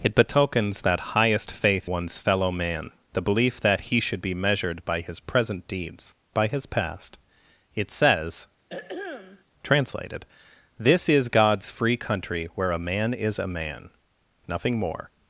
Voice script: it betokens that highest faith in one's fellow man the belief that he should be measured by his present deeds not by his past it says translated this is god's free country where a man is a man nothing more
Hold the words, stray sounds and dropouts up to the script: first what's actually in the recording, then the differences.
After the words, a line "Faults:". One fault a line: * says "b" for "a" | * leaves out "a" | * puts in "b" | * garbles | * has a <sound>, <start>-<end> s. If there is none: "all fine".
it betokens that highest faith one's fellow man the belief that he should be measured by his present deeds by his past it says translated this is god's free country where a man is a man nothing more
Faults:
* leaves out "in"
* leaves out "not"
* has a throat clearing, 8.7-9.4 s